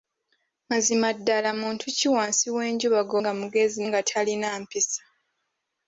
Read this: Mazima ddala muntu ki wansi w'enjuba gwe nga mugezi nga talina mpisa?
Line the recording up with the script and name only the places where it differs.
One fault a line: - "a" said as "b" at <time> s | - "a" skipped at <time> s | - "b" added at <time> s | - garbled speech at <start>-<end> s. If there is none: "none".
none